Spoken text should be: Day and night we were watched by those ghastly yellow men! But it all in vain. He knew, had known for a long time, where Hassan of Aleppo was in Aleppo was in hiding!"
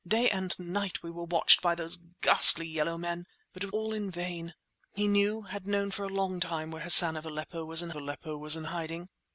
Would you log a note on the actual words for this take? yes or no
no